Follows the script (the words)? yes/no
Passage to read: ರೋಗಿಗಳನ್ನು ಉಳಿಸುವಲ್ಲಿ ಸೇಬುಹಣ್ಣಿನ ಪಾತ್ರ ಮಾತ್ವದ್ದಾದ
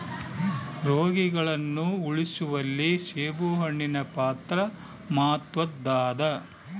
yes